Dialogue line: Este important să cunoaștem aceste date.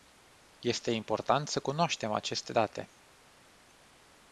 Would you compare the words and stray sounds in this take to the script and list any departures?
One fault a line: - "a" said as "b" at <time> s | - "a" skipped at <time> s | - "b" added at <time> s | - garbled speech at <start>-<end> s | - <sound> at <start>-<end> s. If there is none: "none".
none